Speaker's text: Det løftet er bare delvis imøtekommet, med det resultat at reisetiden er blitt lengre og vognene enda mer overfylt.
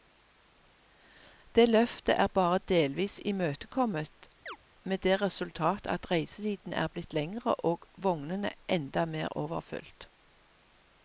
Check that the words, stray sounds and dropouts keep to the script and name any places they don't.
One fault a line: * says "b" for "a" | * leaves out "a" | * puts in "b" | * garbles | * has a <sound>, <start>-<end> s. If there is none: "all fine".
* has a chirp, 4.5-4.6 s